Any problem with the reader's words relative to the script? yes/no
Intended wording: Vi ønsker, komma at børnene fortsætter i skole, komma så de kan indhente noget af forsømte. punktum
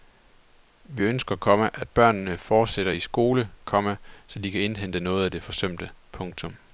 yes